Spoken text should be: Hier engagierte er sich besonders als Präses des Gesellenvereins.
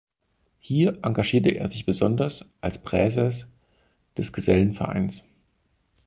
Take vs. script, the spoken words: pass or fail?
pass